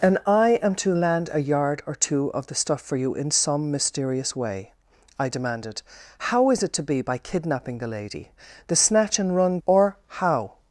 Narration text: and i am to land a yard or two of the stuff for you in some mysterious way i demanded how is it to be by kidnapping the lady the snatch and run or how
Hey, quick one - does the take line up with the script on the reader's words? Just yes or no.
yes